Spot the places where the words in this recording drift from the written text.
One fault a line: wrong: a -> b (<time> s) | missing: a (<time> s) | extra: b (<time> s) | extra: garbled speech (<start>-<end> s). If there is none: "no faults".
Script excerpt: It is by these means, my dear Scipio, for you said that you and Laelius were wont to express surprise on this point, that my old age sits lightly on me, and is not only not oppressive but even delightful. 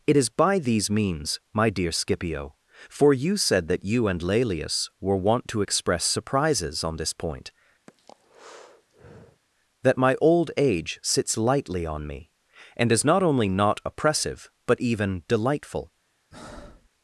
wrong: surprise -> surprises (6.0 s)